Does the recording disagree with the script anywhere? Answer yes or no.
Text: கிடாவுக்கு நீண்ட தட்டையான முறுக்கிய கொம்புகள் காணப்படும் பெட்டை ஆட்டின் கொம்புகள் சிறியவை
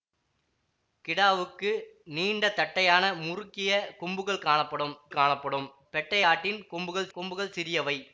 yes